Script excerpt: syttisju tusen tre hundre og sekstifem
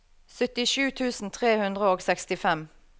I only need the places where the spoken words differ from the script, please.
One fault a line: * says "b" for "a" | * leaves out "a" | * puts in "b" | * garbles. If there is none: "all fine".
all fine